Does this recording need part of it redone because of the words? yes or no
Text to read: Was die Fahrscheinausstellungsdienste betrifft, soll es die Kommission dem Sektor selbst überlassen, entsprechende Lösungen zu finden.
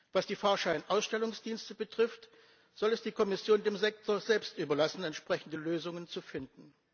no